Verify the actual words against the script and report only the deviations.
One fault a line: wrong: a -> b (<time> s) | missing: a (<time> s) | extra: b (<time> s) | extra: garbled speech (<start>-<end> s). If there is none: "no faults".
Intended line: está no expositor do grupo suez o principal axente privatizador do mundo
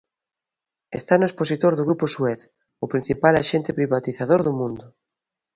no faults